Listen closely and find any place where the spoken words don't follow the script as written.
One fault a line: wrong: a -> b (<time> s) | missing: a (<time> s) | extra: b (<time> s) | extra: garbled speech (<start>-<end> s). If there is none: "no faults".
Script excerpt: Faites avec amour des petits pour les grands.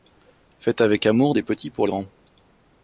missing: les (1.8 s)